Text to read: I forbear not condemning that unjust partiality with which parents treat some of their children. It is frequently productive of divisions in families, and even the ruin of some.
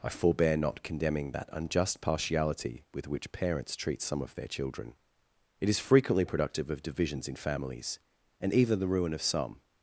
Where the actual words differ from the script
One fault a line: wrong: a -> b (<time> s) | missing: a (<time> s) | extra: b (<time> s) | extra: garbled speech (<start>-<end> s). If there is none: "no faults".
no faults